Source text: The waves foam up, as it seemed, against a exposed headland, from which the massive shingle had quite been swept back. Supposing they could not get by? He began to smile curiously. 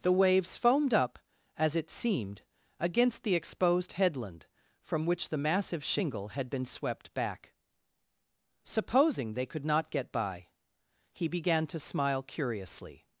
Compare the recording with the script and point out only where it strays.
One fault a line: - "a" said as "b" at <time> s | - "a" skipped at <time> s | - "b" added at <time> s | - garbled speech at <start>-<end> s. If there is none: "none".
- "foam" said as "foamed" at 0.6 s
- "a" said as "the" at 3.2 s
- "quite" skipped at 6.5 s